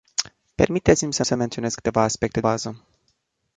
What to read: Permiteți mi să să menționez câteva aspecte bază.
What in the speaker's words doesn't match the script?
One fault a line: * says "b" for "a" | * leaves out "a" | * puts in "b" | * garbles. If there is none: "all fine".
all fine